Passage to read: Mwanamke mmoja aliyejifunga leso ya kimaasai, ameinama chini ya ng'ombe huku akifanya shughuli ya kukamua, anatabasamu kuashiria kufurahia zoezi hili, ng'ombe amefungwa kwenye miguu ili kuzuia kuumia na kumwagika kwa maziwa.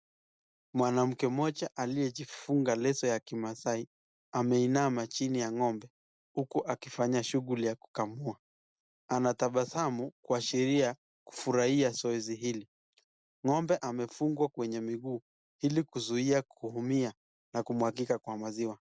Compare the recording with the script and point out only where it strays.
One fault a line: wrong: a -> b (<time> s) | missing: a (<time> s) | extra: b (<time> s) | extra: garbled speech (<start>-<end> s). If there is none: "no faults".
no faults